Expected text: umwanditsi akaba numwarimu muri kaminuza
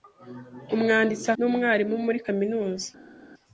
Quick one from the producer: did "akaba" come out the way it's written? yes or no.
no